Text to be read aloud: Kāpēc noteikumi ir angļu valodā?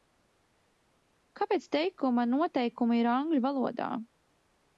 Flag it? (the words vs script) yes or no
yes